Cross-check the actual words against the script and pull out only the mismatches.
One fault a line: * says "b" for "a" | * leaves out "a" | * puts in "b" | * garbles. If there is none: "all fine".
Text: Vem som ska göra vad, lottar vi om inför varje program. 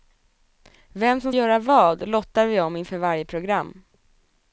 * leaves out "ska"